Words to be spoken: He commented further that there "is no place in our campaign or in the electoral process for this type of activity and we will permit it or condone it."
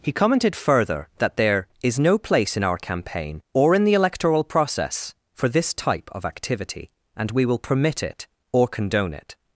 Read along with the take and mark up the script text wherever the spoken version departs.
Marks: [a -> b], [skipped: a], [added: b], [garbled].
He commented further that there "is no place in our campaign or in the electoral process for this type of activity and we will permit it or condone it."